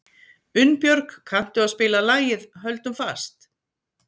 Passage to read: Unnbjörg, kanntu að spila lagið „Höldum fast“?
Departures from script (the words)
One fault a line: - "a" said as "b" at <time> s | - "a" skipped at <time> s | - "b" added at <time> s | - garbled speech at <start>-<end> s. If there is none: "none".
none